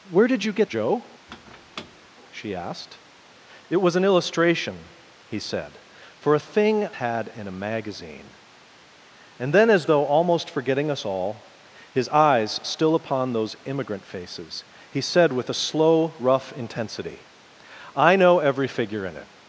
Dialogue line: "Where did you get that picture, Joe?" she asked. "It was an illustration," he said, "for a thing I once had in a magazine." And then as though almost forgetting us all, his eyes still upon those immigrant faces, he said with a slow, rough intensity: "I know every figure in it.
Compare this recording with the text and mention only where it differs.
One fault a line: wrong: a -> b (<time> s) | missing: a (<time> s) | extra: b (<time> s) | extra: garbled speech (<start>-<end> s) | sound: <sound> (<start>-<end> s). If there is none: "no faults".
missing: that picture (0.7 s)
sound: squeak (1.3-2.1 s)
missing: I once (6.9 s)